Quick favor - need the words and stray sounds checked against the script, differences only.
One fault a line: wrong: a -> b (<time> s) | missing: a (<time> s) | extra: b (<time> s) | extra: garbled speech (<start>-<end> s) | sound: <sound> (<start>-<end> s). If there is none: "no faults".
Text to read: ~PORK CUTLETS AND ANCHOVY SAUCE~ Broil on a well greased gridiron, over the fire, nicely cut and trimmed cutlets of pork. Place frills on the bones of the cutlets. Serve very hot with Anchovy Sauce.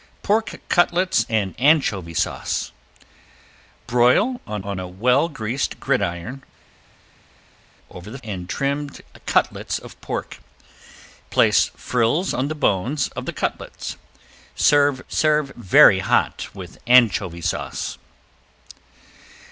extra: on (4.6 s)
missing: fire nicely cut (8.2 s)
extra: serve (15.1 s)